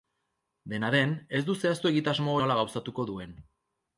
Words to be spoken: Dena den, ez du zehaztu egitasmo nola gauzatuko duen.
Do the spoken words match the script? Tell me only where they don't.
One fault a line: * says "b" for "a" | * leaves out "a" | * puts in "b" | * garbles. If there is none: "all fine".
all fine